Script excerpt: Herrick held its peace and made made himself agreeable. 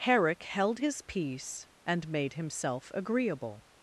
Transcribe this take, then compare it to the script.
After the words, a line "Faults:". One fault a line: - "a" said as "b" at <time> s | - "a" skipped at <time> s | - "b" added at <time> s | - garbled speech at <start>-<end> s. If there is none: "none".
Herrick held his peace and made himself agreeable.
Faults:
- "its" said as "his" at 0.8 s
- "made" skipped at 2.3 s